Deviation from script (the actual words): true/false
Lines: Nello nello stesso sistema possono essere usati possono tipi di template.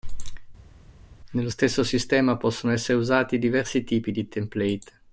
true